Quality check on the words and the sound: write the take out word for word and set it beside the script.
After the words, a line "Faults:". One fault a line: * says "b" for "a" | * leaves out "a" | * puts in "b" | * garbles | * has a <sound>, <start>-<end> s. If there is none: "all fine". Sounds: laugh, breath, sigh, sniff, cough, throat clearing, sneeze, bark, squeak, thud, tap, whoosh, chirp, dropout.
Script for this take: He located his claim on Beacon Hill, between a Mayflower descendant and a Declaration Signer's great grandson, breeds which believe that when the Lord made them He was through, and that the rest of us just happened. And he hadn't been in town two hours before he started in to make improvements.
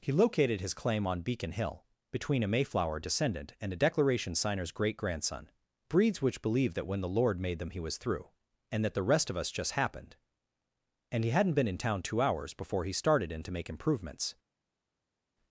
He located his claim on Beacon Hill, between a Mayflower descendant and a Declaration Signer's great grandson, breeds which believe that when the Lord made them He was through, and that the rest of us just happened. And he hadn't been in town two hours before he started in to make improvements.
Faults:
all fine